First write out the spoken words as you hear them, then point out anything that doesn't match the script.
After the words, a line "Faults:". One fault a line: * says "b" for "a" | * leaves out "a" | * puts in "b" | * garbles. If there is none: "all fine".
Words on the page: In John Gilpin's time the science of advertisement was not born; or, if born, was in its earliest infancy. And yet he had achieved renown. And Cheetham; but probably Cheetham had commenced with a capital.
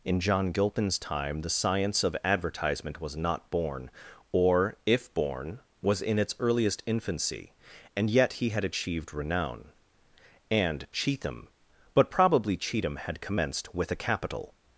In John Gilpin's time the science of advertisement was not born; or, if born, was in its earliest infancy. And yet he had achieved renown. And Cheetham; but probably Cheetham had commenced with a capital.
Faults:
all fine